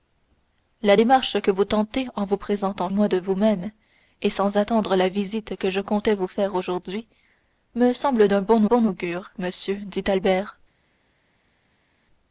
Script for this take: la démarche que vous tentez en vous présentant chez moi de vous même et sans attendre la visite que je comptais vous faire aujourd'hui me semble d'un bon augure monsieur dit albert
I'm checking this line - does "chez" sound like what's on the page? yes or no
no